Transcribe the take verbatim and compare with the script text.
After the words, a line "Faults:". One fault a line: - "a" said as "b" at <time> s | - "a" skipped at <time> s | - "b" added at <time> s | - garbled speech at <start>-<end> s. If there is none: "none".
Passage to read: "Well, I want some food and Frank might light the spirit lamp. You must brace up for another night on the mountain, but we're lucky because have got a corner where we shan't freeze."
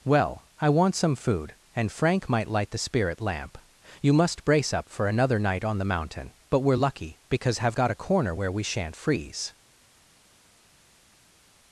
"Well, I want some food and Frank might light the spirit lamp. You must brace up for another night on the mountain, but we're lucky because have got a corner where we shan't freeze."
Faults:
none